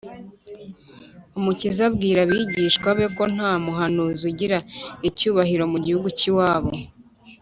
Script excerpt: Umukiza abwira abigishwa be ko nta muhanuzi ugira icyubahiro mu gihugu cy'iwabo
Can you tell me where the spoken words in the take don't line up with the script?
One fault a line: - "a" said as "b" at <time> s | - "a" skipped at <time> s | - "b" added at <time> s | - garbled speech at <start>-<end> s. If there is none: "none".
none